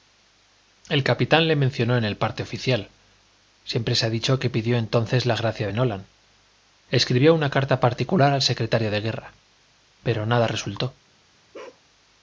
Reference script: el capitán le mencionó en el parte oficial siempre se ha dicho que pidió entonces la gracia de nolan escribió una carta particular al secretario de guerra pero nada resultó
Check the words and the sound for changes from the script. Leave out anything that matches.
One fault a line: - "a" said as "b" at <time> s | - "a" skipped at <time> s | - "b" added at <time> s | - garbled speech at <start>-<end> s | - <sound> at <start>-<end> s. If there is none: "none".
- bark at 11.5-11.8 s